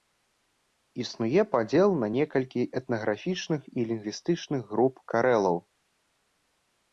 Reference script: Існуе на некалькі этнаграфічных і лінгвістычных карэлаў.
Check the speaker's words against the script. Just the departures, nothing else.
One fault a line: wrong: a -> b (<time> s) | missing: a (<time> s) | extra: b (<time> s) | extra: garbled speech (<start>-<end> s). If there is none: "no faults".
extra: падзел (1.5 s)
extra: груп (4.7 s)